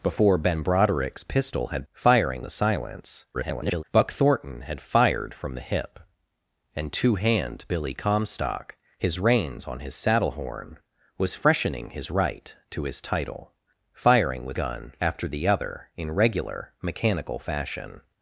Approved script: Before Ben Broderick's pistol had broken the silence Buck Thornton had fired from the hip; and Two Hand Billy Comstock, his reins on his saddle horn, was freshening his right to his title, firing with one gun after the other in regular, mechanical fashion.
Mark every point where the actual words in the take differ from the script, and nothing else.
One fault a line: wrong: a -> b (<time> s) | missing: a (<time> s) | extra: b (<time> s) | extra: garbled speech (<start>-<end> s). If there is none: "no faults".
wrong: broken -> firing (1.9 s)
extra: garbled speech (3.3-3.8 s)
missing: one (14.6 s)